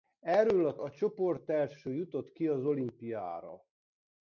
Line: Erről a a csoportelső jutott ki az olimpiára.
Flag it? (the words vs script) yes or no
no